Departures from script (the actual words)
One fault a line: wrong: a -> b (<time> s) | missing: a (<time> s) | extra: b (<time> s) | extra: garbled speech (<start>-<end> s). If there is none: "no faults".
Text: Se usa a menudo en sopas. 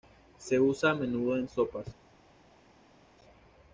no faults